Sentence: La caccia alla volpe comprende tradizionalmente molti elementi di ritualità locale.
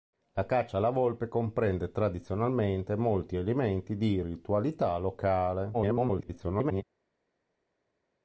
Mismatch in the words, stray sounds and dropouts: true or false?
true